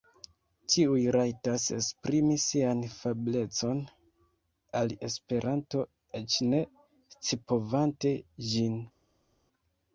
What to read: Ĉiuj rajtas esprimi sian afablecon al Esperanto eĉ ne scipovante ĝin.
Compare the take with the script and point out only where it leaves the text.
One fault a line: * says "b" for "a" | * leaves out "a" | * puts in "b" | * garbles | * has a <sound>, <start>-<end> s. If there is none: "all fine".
all fine